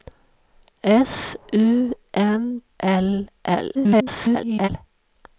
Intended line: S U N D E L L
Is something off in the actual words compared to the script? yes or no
yes